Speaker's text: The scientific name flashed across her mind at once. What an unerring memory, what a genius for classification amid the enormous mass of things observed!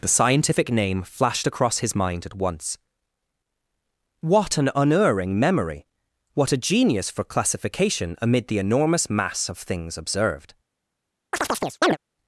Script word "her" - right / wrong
wrong